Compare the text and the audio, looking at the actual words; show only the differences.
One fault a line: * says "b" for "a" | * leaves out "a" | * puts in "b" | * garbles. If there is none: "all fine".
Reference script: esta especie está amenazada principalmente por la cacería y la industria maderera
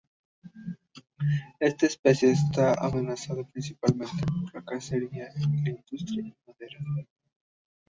all fine